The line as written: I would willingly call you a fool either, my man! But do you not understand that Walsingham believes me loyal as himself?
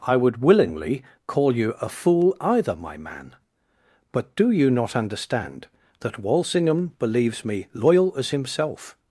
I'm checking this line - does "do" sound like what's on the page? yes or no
yes